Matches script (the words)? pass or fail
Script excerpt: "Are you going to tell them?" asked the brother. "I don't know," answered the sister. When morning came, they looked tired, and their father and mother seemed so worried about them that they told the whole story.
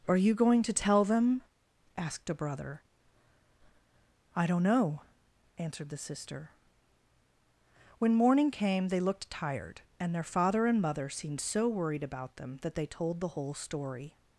fail